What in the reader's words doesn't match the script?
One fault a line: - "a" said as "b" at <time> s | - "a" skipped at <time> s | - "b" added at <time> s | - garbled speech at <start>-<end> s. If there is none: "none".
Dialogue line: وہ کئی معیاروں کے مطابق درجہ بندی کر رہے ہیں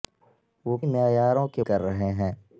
- "کئی" skipped at 0.8 s
- "مطابق درجہ بندی" skipped at 1.6 s